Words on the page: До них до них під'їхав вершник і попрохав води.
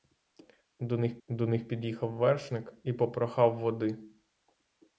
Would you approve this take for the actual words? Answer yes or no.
yes